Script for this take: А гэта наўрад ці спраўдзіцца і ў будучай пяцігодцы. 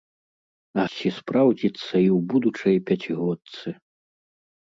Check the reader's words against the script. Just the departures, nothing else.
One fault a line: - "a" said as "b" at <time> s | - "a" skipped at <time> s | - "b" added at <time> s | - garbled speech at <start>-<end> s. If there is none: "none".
- "гэта наўрад" skipped at 0.8 s